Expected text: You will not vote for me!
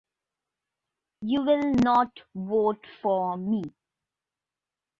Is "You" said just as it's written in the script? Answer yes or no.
yes